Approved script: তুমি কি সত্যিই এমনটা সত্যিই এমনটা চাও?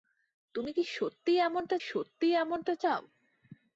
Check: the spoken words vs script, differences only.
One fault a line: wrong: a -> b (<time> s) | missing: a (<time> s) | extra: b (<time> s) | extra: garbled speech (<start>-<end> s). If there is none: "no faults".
no faults